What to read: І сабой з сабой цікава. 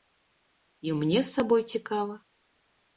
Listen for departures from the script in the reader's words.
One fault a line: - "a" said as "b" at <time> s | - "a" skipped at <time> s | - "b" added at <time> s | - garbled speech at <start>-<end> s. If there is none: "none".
- "сабой" said as "мне" at 1.0 s